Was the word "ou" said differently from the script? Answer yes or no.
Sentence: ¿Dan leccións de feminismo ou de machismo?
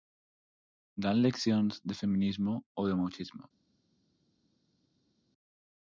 no